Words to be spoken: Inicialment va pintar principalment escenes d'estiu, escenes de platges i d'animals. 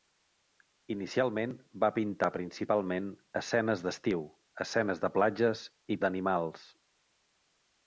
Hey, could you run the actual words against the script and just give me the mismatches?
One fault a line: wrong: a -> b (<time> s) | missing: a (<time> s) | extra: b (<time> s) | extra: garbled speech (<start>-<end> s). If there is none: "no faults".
no faults